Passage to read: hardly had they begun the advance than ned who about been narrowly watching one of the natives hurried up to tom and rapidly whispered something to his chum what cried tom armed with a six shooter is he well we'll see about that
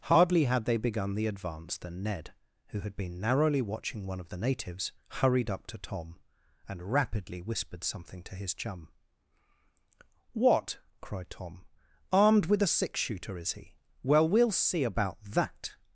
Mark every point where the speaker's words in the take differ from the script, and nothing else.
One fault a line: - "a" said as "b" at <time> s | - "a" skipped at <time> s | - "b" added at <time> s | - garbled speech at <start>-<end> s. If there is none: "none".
- "about" said as "had" at 2.8 s